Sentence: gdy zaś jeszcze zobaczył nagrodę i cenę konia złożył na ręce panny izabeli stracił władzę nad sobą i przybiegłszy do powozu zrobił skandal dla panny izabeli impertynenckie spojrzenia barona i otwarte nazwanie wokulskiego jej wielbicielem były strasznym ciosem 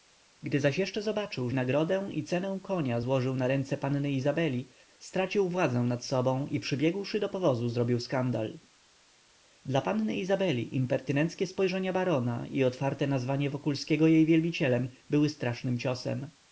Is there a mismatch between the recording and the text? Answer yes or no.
no